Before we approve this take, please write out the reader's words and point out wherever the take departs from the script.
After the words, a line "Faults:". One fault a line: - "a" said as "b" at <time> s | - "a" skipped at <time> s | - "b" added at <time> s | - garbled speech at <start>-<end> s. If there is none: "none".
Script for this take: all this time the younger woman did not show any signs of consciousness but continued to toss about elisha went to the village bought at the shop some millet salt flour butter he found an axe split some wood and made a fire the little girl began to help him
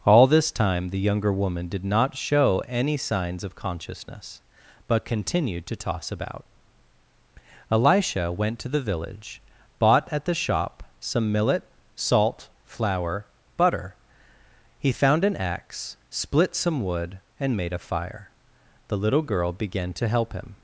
all this time the younger woman did not show any signs of consciousness but continued to toss about elisha went to the village bought at the shop some millet salt flour butter he found an axe split some wood and made a fire the little girl began to help him
Faults:
none